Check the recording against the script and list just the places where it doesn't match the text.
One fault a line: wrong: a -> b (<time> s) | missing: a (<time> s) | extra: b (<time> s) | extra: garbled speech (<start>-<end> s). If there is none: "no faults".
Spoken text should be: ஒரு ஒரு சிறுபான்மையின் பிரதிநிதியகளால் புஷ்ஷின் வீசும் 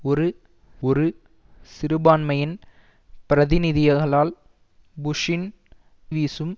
no faults